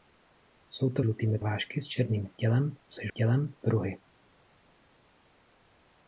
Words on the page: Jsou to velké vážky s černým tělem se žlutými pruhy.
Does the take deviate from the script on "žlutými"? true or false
true